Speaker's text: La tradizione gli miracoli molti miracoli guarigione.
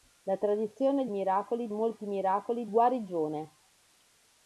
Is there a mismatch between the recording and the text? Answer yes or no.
no